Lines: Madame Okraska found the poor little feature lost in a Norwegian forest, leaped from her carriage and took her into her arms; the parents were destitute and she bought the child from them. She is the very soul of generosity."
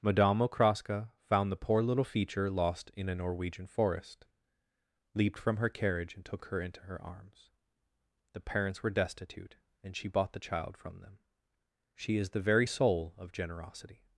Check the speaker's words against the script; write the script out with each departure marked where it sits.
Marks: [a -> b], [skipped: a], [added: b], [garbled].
Madame Okraska found the poor little feature lost in a Norwegian forest, leaped from her carriage and took her into her arms; the parents were destitute and she bought the child from them. She is the very soul of generosity."